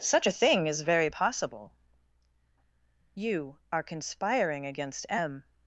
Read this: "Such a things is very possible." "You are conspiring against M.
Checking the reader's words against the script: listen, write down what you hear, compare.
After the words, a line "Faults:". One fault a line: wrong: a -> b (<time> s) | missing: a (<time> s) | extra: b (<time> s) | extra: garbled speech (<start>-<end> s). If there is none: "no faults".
"Such a thing is very possible." "You are conspiring against M.
Faults:
wrong: things -> thing (0.3 s)